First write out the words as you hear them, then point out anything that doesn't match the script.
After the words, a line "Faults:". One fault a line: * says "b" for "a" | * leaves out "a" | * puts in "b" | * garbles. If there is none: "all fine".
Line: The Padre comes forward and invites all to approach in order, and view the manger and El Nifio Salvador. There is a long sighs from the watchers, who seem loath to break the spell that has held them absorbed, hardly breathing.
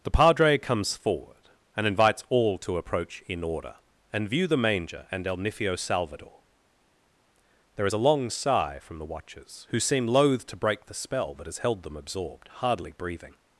The Padre comes forward and invites all to approach in order, and view the manger and El Nifio Salvador. There is a long sigh from the watchers, who seem loath to break the spell that has held them absorbed, hardly breathing.
Faults:
* says "sigh" for "sighs"